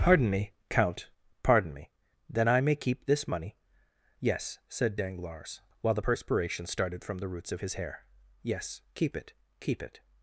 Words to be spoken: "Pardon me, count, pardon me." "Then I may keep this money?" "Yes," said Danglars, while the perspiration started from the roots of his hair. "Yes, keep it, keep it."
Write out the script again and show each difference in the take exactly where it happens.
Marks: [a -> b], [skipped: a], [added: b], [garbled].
"Pardon me, count, pardon me." "Then I may keep this money?" "Yes," said Danglars, while the perspiration started from the roots of his hair. "Yes, keep it, keep it."